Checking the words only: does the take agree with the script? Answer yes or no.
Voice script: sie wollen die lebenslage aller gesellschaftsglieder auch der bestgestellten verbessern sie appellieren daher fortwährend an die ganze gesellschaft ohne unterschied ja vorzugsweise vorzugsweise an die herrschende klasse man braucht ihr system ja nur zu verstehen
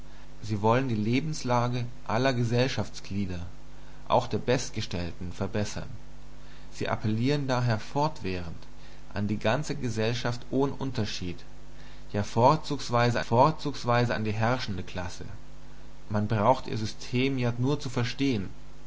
yes